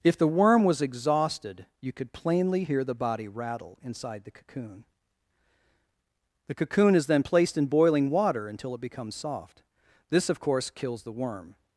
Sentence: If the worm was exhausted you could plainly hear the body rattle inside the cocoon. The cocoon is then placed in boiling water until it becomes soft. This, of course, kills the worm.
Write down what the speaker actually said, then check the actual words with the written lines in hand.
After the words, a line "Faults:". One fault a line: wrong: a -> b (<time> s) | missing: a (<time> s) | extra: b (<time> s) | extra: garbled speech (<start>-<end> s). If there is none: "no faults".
If the worm was exhausted you could plainly hear the body rattle inside the cocoon. The cocoon is then placed in boiling water until it becomes soft. This, of course, kills the worm.
Faults:
no faults